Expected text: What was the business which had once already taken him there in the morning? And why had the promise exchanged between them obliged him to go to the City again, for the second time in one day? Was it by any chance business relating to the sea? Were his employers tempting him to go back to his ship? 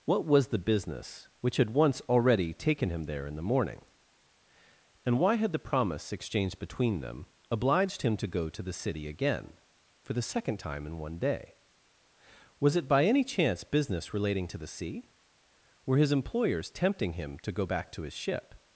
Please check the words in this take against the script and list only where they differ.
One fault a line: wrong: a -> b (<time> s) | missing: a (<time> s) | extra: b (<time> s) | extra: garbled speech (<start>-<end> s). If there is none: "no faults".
no faults